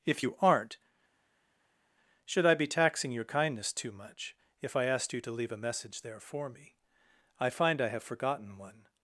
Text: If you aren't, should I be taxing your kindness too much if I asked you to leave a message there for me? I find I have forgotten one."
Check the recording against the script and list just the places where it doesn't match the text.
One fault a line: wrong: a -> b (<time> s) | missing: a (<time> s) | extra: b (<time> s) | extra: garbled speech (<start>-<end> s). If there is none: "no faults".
no faults